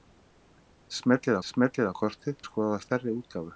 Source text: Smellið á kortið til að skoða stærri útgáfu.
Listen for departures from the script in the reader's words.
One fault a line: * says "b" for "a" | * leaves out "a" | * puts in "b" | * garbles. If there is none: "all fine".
* puts in "smellið"
* leaves out "til"